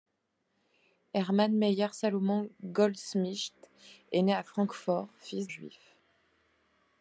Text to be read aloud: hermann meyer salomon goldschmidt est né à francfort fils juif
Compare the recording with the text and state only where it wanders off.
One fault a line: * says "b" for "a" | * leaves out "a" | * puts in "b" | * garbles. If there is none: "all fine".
all fine